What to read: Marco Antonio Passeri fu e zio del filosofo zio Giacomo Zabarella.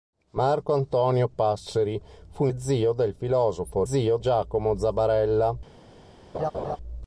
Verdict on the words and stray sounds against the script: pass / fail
fail